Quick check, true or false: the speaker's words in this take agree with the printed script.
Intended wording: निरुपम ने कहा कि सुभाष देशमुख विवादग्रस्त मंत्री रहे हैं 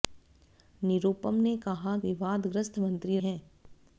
false